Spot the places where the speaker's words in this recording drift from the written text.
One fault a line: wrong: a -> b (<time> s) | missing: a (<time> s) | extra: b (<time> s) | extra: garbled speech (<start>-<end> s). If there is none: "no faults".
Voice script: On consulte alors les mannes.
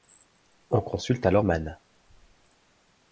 missing: les (1.4 s)